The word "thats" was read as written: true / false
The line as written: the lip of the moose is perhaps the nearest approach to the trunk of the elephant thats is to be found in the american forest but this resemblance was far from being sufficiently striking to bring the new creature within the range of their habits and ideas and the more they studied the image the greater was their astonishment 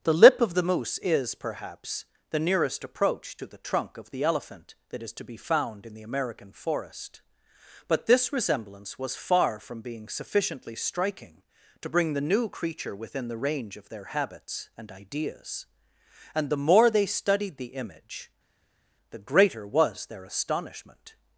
false